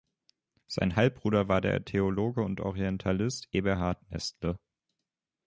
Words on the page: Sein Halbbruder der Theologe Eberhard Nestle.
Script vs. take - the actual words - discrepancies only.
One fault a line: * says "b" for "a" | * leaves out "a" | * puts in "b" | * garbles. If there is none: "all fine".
* puts in "war"
* puts in "und Orientalist"